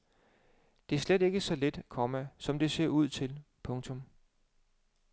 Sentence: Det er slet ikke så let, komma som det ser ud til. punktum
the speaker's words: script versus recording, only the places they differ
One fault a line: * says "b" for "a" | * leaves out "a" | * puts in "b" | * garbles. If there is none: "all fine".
all fine